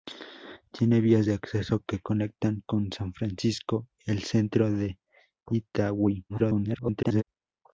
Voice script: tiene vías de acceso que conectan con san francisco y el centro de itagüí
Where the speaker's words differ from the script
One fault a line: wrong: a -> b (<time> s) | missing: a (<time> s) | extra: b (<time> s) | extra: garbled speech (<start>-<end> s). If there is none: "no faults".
missing: y (3.9 s)
extra: garbled speech (6.3-7.2 s)